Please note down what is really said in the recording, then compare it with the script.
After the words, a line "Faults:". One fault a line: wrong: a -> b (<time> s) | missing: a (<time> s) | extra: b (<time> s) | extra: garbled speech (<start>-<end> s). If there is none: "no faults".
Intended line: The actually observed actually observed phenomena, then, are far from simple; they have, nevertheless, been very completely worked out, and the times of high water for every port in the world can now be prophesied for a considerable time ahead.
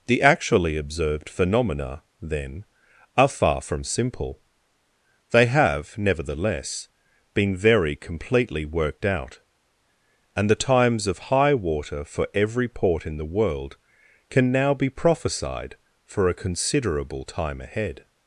The actually observed phenomena, then, are far from simple; they have, nevertheless, been very completely worked out, and the times of high water for every port in the world can now be prophesied for a considerable time ahead.
Faults:
missing: actually observed (1.3 s)